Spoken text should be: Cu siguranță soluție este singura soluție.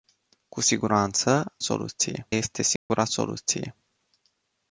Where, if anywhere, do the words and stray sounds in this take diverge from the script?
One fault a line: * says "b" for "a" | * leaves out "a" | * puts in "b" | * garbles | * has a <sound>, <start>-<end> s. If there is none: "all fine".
* has a dropout, 2.8-2.9 s